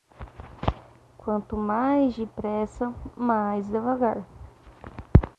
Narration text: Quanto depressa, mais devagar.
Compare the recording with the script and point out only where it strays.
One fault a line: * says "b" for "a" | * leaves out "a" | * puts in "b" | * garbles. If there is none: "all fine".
* puts in "mais"